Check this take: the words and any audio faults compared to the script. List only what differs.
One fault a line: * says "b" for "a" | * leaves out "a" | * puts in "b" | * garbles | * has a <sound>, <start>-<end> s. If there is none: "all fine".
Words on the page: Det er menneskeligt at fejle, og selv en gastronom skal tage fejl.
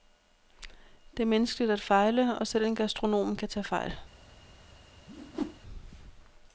* says "kan" for "skal"
* has a whoosh, 5.1-5.6 s